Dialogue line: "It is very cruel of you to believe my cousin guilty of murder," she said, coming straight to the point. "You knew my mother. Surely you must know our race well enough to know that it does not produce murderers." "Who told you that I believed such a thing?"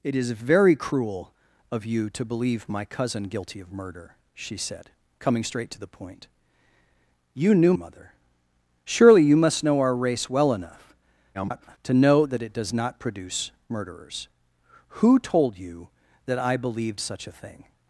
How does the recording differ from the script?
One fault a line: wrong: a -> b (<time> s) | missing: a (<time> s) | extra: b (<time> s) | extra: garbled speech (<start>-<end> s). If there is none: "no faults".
missing: my (7.7 s)
extra: garbled speech (11.3-11.8 s)